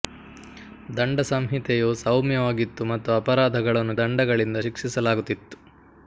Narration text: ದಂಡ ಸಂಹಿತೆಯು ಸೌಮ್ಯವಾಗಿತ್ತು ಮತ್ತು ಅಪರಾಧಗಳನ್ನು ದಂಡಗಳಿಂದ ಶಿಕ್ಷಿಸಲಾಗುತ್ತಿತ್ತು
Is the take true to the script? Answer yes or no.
yes